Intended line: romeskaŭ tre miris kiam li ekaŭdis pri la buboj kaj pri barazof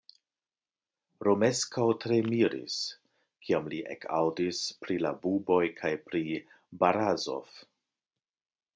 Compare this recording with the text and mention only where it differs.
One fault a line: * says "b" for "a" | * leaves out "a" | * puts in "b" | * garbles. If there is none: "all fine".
all fine